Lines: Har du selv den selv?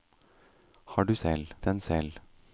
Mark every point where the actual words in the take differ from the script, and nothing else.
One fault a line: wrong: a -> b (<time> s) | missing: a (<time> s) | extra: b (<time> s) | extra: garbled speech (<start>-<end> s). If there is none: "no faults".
no faults